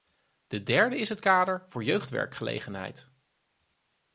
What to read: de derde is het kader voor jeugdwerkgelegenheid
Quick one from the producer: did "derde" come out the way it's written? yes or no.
yes